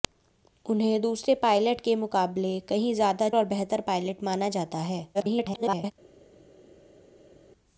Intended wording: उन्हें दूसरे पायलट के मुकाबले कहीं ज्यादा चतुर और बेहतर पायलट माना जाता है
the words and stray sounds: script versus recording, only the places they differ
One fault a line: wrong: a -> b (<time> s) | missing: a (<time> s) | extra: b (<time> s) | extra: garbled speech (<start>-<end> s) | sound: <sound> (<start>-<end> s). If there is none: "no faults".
missing: चतुर (3.3 s)
extra: garbled speech (5.1-5.9 s)